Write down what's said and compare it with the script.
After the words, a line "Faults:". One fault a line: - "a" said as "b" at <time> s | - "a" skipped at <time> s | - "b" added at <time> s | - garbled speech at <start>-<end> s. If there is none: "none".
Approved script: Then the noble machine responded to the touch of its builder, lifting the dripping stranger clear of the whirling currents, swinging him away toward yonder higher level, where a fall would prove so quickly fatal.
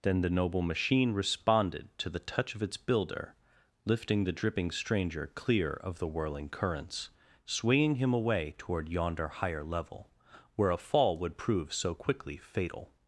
Then the noble machine responded to the touch of its builder, lifting the dripping stranger clear of the whirling currents, swinging him away toward yonder higher level, where a fall would prove so quickly fatal.
Faults:
none